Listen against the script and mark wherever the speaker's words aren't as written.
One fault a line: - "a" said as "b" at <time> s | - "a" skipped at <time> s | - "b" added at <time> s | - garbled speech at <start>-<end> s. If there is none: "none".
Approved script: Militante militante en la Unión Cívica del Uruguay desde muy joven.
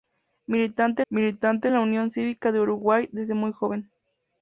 none